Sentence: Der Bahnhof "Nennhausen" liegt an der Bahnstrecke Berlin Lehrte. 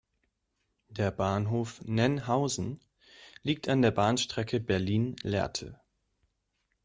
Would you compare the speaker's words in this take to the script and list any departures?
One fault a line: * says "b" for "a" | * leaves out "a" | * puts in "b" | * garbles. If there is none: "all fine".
all fine